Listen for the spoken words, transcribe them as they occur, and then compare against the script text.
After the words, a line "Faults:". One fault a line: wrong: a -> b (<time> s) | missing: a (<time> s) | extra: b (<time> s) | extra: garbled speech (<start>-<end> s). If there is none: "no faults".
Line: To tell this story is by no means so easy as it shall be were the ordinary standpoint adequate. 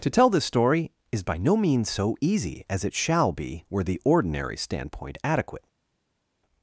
To tell this story is by no means so easy as it shall be were the ordinary standpoint adequate.
Faults:
no faults